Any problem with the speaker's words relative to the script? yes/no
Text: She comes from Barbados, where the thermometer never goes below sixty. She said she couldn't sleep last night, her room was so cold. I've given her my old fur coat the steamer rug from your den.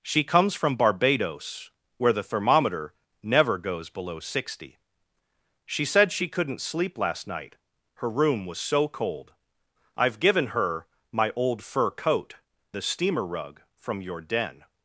no